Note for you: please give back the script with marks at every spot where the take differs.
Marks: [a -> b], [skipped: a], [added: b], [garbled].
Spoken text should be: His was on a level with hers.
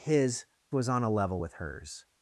His was on a level with hers.